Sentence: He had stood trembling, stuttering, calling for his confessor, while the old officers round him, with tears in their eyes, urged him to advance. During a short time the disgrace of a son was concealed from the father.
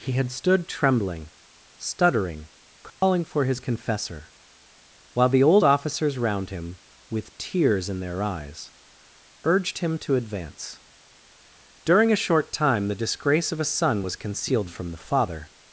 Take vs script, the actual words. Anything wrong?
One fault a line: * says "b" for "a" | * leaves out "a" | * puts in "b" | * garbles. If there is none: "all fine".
all fine